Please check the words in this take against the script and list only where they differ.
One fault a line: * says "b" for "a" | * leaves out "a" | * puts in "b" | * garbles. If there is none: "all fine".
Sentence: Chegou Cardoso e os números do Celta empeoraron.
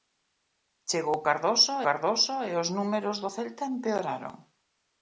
* puts in "Cardoso"